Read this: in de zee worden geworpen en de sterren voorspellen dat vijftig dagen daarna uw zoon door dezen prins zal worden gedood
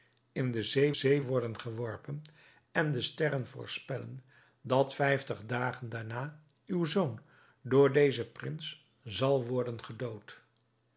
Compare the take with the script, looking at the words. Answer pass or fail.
fail